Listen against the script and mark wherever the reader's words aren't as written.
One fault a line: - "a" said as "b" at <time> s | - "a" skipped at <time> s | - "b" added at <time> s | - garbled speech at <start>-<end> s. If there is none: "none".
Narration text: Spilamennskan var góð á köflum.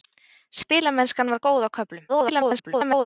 - garbled speech at 2.1-3.1 s